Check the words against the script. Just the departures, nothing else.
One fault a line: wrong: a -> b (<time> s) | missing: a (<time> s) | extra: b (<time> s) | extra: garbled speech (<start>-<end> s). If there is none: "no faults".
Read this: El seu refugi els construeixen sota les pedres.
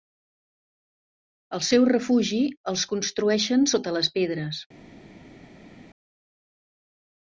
no faults